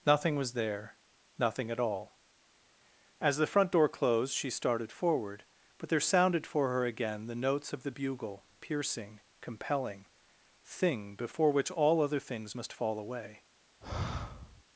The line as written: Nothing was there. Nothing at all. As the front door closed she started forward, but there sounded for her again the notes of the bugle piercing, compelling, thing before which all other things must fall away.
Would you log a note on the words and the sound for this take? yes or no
yes